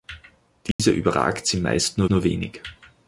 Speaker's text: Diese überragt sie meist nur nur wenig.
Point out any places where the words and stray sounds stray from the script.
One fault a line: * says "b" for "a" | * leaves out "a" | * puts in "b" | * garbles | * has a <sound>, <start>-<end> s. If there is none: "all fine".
* has a dropout, 0.7-0.8 s